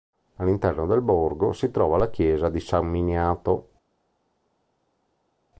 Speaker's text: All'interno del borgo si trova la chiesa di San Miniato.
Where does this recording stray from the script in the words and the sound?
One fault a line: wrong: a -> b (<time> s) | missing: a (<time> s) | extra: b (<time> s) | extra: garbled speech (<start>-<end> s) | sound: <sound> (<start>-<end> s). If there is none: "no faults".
no faults